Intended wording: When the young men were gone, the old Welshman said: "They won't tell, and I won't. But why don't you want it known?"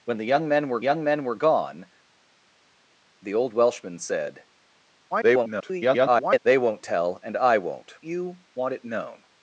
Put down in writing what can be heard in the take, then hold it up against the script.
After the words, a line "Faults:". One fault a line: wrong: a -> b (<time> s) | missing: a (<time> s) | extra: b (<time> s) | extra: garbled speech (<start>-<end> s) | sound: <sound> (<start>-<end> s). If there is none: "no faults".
When the young men were young men were gone, the old Welshman said: [garbled] "They won't tell, and I won't. You want it known?"
Faults:
extra: young men were (0.8 s)
extra: garbled speech (5.1-6.4 s)
missing: But why don't (8.0 s)